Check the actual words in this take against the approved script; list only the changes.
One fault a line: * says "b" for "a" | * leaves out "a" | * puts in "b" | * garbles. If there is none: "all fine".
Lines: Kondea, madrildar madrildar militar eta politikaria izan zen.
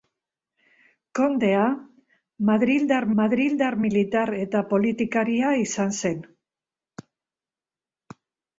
all fine